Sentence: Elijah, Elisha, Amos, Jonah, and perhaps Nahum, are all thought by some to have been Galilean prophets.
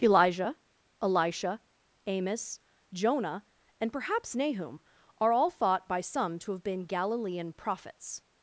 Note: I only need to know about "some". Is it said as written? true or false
true